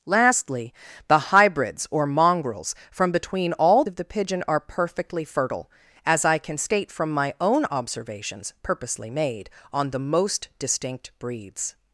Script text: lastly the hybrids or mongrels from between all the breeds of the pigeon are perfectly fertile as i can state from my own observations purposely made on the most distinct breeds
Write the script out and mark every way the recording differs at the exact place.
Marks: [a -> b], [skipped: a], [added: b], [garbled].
lastly the hybrids or mongrels from between all [skipped: the breeds] of the pigeon are perfectly fertile as i can state from my own observations purposely made on the most distinct breeds